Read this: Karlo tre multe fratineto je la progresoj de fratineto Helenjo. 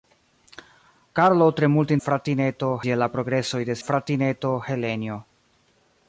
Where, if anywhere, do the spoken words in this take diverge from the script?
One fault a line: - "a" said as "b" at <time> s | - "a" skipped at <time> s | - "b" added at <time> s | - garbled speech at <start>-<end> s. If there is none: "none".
none